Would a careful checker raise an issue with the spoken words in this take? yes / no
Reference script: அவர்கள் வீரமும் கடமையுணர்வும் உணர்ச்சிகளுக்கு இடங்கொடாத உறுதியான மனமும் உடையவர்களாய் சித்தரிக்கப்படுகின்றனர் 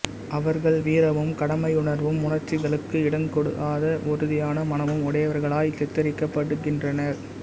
no